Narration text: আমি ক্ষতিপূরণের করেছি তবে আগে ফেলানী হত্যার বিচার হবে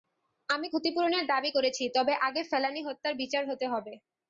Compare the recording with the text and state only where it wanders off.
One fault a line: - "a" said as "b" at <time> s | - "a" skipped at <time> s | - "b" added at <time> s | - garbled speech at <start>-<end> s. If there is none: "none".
- "দাবি" added at 1.3 s
- "হতে" added at 3.5 s